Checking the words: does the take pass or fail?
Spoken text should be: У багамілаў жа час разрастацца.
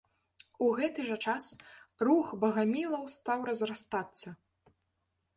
fail